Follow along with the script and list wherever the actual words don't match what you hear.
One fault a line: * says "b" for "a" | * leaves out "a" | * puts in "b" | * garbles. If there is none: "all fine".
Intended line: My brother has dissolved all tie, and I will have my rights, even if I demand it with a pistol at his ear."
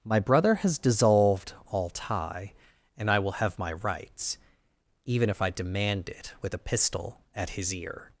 all fine